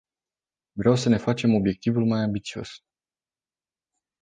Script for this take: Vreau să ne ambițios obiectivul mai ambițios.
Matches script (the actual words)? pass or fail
fail